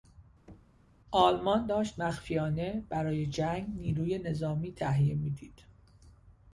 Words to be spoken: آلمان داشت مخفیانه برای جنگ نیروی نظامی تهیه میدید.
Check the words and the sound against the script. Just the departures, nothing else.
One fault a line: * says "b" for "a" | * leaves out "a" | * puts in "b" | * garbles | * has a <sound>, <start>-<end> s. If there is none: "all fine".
* has a thud, 0.5-0.9 s